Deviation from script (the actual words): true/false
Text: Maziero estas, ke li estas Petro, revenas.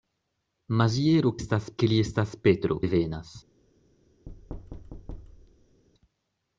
false